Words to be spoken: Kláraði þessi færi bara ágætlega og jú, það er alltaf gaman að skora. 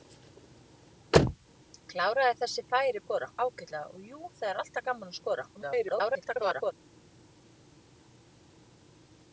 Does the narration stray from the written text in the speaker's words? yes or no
yes